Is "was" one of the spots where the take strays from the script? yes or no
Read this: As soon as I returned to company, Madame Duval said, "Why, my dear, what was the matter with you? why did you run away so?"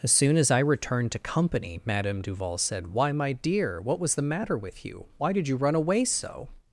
no